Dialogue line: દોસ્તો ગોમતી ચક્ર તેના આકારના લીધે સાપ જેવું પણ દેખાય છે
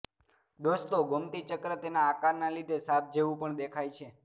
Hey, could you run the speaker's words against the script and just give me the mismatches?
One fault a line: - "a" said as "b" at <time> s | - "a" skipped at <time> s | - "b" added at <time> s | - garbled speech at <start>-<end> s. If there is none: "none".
none